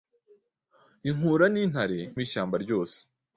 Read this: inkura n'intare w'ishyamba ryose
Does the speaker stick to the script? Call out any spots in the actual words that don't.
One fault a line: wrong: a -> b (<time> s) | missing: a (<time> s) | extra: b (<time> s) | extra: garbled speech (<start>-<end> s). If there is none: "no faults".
no faults